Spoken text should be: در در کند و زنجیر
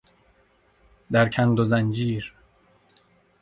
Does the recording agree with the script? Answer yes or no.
no